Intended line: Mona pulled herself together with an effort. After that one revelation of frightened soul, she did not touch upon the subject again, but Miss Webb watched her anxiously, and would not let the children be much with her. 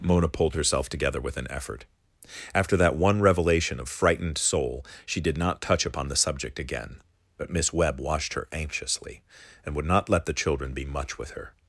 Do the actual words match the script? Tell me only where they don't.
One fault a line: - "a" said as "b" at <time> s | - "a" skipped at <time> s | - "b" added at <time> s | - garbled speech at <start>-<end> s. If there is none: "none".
none